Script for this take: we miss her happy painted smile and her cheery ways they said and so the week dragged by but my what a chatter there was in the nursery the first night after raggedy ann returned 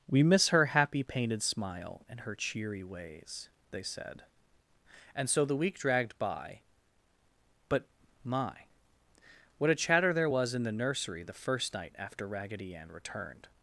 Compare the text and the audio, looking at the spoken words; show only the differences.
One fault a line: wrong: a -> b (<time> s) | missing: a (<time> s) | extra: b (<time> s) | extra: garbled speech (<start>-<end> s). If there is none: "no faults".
no faults